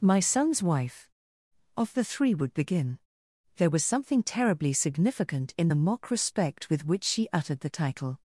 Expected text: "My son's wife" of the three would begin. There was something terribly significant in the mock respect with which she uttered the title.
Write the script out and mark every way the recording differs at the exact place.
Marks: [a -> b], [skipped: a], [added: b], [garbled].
"My son's wife" of the three would begin. There was something terribly significant in the mock respect with which she uttered the title.